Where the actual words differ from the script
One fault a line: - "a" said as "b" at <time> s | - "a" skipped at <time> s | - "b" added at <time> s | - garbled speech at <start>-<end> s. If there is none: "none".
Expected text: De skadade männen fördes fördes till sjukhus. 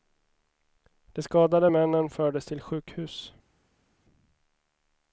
- "fördes" skipped at 2.4 s